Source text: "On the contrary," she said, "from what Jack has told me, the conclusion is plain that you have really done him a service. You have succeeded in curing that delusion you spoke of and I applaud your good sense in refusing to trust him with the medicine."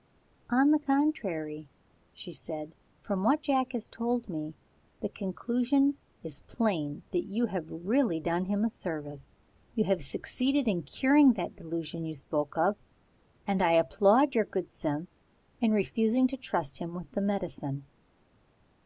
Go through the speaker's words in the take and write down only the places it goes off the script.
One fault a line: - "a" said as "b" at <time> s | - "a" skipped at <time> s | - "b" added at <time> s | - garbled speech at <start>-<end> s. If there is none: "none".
none